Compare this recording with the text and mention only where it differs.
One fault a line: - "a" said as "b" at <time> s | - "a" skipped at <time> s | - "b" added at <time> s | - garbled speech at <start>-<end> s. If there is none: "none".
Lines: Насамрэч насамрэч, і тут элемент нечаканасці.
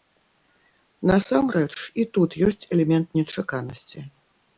- "насамрэч" skipped at 1.7 s
- "ёсць" added at 2.5 s